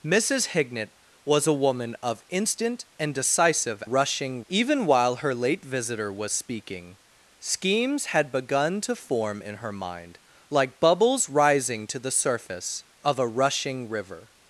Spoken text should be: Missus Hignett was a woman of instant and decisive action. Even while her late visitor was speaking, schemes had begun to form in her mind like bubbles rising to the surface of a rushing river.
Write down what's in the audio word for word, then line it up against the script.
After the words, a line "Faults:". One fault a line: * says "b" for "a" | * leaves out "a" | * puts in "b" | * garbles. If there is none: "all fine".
Missus Hignett was a woman of instant and decisive rushing. Even while her late visitor was speaking, schemes had begun to form in her mind like bubbles rising to the surface of a rushing river.
Faults:
* says "rushing" for "action"